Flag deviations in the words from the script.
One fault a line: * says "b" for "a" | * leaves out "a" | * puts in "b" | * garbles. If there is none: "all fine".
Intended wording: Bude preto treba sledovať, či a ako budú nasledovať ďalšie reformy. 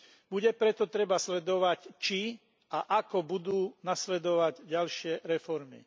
all fine